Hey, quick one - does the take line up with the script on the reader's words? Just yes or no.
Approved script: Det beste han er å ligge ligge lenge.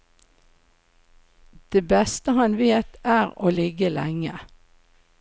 no